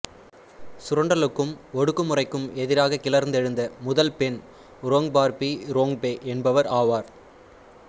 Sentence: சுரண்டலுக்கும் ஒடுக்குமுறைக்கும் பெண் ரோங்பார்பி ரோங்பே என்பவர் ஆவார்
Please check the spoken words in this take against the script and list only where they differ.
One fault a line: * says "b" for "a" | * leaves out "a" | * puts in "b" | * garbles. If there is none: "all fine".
* puts in "எதிராக கிளர்ந்தெழுந்த முதல்"